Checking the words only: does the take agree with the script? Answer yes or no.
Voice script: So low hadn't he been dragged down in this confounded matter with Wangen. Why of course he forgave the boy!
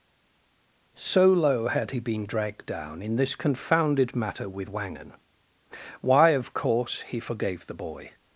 no